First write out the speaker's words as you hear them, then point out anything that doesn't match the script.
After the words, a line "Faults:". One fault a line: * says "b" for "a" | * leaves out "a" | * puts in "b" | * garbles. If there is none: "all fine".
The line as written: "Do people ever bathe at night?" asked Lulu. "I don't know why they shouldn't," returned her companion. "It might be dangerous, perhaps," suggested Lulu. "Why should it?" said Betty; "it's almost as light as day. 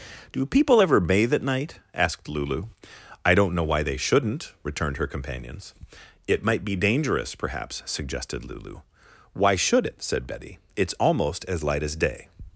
"Do people ever bathe at night?" asked Lulu. "I don't know why they shouldn't," returned her companions. "It might be dangerous, perhaps," suggested Lulu. "Why should it?" said Betty; "it's almost as light as day.
Faults:
* says "companions" for "companion"